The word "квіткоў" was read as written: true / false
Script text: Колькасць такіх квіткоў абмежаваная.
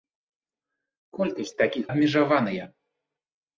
false